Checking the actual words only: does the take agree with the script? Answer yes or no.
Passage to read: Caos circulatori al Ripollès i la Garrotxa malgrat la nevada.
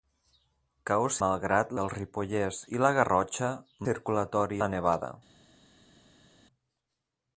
no